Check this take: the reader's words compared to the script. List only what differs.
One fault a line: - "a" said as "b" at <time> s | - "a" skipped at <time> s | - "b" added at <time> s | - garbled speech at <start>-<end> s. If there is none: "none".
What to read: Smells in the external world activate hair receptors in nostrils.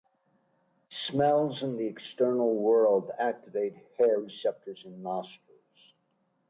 none